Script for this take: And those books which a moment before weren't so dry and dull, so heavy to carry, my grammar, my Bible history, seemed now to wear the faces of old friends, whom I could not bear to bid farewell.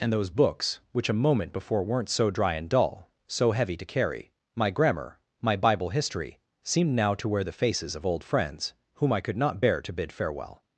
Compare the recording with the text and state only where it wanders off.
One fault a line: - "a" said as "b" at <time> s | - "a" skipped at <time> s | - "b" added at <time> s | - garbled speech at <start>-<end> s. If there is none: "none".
none